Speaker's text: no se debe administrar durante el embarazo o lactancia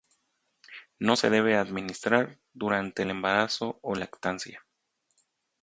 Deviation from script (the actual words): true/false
false